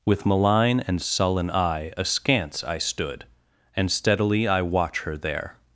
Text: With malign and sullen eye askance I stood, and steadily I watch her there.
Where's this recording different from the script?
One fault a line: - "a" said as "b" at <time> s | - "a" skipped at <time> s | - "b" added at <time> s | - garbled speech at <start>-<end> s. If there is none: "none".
none